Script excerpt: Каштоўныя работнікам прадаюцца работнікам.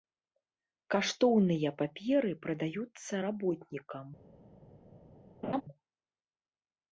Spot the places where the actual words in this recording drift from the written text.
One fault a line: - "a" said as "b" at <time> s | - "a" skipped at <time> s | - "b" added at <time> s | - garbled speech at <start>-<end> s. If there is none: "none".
- "работнікам" said as "паперы" at 1.8 s